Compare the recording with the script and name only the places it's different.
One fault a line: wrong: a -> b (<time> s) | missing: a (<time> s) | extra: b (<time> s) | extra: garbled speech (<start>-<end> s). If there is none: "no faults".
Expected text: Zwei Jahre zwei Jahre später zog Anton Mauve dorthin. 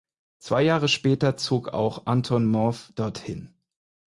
missing: zwei Jahre (0.9 s)
extra: auch (1.7 s)